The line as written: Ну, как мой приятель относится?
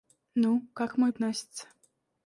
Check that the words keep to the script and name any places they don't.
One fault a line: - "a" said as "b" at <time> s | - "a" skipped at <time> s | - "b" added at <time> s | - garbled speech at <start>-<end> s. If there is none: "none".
- "приятель" skipped at 1.1 s